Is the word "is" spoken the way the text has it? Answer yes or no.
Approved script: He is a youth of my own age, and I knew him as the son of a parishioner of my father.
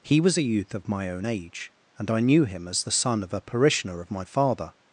no